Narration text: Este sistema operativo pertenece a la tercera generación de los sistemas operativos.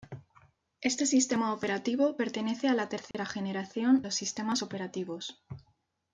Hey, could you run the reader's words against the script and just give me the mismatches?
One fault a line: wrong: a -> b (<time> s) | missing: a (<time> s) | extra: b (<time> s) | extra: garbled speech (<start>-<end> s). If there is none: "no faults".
missing: de (4.0 s)